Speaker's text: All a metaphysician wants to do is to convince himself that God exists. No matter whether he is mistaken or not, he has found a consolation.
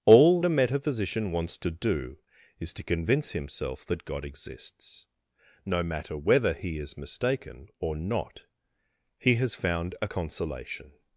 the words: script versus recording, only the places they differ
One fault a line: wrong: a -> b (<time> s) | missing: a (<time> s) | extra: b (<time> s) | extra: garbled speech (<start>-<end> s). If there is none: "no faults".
no faults